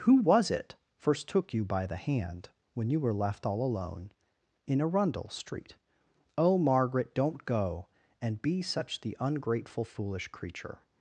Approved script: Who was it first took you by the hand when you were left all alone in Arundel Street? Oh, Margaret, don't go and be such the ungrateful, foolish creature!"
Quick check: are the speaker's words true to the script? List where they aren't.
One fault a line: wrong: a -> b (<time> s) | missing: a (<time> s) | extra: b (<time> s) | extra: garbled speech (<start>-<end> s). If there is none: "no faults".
no faults